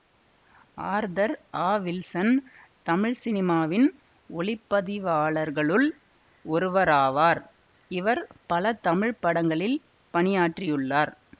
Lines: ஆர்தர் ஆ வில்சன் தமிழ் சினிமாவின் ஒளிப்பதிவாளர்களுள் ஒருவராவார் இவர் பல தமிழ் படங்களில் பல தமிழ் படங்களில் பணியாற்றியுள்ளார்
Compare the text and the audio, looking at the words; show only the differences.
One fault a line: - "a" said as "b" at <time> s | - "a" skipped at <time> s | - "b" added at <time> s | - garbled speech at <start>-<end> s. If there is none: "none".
- "பல தமிழ் படங்களில்" skipped at 9.8 s